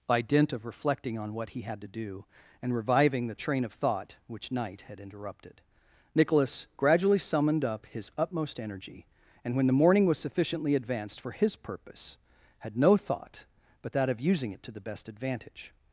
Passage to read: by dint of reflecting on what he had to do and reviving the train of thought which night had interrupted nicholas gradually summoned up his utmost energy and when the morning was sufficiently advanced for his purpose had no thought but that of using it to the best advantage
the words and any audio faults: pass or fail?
pass